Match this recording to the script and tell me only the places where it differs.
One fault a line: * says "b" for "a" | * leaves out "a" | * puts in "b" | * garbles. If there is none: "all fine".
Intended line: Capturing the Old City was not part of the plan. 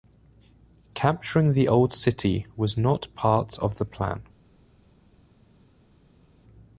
all fine